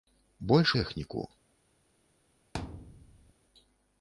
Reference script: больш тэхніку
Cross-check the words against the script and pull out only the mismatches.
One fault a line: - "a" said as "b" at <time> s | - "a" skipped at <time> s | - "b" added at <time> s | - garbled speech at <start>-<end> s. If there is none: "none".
none